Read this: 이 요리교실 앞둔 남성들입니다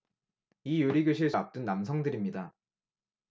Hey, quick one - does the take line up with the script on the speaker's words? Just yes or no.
yes